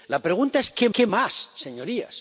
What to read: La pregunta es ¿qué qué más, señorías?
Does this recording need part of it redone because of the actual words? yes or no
no